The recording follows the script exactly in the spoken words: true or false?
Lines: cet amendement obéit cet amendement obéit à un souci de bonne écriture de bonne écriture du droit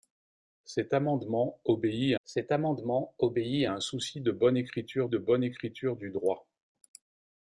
true